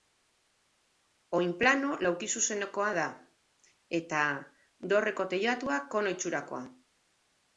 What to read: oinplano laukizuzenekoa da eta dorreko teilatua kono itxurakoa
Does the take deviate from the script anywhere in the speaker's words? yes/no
no